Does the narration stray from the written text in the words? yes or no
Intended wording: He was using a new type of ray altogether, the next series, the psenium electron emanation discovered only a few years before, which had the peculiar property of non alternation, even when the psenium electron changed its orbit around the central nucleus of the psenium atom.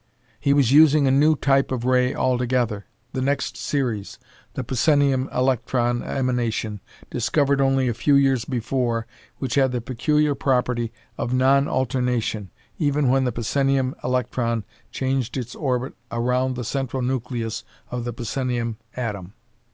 no